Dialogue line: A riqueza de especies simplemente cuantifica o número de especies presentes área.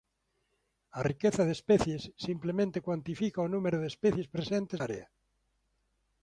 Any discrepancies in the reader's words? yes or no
no